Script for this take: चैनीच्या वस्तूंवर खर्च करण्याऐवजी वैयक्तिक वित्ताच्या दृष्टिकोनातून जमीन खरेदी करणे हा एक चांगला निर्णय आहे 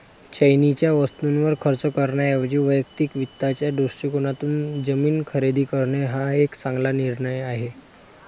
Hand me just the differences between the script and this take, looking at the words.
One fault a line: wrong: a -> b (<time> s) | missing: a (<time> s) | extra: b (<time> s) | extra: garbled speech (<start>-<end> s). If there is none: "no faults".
no faults